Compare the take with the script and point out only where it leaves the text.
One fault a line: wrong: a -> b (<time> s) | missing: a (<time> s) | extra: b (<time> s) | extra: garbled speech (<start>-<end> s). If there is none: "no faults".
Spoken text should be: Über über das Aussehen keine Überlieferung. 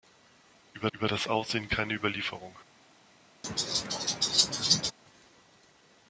no faults